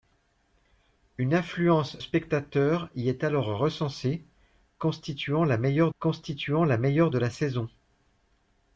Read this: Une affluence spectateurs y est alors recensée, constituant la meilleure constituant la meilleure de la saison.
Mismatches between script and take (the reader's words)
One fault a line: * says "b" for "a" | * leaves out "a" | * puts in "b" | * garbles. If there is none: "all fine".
all fine